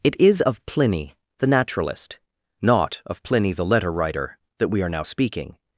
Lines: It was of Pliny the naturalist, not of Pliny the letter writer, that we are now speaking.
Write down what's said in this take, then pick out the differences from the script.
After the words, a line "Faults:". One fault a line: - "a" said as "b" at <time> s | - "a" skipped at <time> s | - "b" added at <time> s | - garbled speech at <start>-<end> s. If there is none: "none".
It is of Pliny the naturalist, not of Pliny the letter writer, that we are now speaking.
Faults:
- "was" said as "is" at 0.2 s